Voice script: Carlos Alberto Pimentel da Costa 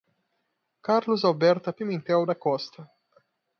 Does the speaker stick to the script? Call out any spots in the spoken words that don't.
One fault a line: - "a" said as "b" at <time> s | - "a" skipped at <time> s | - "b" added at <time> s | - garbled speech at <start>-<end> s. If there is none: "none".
none